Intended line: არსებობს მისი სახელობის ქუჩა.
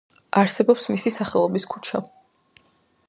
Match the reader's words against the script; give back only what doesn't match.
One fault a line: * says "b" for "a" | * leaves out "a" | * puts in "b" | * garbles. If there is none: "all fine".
all fine